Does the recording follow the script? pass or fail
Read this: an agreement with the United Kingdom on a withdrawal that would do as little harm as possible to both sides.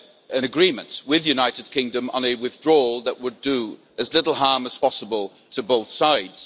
pass